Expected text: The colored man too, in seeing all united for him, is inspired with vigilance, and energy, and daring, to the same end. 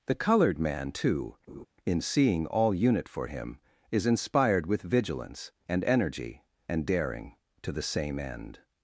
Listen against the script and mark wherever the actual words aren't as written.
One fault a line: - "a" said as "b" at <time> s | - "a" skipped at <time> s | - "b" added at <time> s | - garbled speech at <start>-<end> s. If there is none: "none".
- "united" said as "unit" at 2.7 s